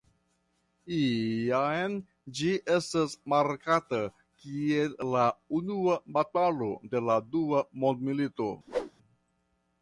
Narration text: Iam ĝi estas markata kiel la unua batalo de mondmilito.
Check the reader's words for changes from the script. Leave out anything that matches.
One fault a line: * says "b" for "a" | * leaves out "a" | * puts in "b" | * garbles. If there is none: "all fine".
* puts in "la dua"